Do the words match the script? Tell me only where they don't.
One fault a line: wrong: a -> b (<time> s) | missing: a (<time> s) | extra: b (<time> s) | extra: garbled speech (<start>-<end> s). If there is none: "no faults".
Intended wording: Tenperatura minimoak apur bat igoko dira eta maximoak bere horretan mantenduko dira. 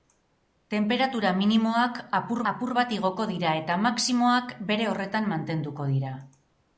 extra: apur (2.5 s)